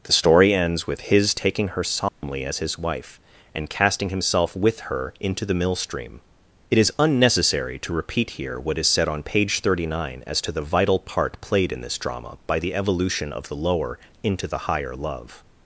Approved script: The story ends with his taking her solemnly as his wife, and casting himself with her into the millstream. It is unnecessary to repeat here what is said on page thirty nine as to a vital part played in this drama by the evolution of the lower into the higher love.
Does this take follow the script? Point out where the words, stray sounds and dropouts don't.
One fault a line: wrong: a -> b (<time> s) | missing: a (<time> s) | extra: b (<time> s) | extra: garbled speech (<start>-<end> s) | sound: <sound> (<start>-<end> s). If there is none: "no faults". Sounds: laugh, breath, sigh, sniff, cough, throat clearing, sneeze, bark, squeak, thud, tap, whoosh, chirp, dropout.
sound: dropout (2.1-2.2 s)
wrong: a -> the (10.5 s)